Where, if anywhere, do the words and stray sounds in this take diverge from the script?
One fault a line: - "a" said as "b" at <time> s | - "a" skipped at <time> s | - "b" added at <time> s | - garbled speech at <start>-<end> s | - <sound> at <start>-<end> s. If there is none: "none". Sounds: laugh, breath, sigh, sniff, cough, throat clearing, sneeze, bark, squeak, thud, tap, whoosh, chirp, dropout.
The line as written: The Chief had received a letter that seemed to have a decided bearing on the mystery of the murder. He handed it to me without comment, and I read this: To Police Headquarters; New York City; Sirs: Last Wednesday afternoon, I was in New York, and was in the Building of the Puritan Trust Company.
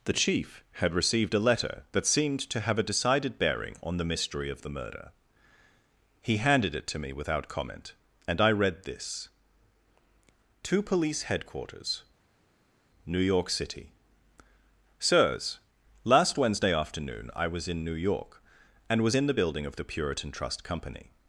none